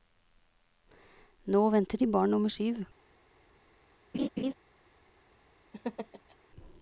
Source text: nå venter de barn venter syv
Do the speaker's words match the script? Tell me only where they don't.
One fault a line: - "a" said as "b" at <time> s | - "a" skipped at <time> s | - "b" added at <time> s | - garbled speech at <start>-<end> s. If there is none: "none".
- "venter" said as "nummer" at 2.3 s